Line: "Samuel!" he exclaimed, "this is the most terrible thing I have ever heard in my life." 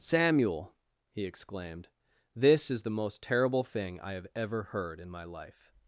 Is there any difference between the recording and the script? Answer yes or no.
no